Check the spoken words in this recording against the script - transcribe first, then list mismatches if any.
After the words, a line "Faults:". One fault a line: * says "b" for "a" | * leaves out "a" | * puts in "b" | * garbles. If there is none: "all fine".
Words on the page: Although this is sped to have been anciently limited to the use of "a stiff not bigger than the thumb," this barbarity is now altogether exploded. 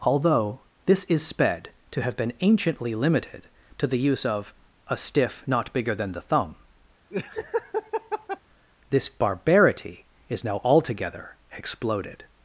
Although this is sped to have been anciently limited to the use of "a stiff not bigger than the thumb," this barbarity is now altogether exploded.
Faults:
all fine